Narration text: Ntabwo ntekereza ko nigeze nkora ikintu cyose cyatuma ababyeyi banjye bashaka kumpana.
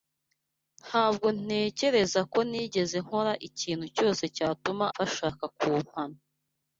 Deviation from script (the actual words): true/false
true